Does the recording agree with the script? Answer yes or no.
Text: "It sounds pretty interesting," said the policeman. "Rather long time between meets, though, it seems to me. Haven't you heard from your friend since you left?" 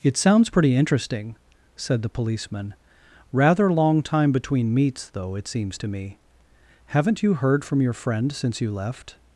yes